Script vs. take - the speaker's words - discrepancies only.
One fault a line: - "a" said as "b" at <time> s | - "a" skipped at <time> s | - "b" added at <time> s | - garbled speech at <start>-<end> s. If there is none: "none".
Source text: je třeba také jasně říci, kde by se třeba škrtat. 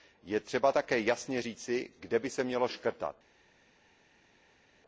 - "třeba" said as "mělo" at 2.4 s